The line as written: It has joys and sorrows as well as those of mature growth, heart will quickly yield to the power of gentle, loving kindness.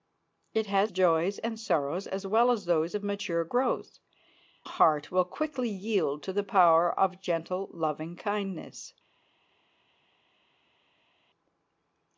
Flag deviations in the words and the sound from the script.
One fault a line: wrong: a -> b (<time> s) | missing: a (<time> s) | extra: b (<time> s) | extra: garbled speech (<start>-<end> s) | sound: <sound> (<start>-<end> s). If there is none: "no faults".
no faults